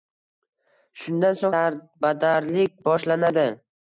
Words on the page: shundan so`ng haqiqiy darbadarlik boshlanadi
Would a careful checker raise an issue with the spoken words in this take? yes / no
yes